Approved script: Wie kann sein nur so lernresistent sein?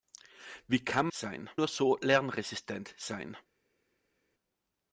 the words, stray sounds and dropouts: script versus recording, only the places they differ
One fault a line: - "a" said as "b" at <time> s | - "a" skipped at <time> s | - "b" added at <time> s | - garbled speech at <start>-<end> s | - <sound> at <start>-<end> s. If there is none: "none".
none